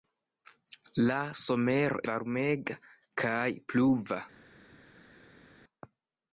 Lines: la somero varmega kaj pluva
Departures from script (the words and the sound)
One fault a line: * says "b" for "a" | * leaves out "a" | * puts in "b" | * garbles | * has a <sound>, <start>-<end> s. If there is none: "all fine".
all fine